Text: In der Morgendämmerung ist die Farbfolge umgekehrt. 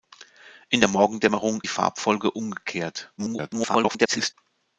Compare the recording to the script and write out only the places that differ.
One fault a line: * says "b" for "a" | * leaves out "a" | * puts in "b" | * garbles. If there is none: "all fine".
* leaves out "ist"
* garbles